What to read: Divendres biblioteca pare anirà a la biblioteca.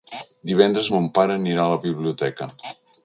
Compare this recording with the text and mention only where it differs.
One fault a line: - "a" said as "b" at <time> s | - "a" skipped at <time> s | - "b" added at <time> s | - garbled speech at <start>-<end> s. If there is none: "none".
- "biblioteca" said as "mon" at 0.9 s